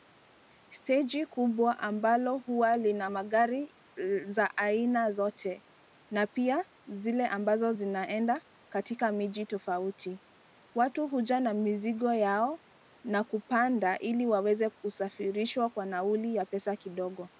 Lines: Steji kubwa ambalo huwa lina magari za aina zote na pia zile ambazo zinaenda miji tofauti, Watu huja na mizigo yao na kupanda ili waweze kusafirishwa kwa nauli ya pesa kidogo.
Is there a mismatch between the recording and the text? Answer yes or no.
yes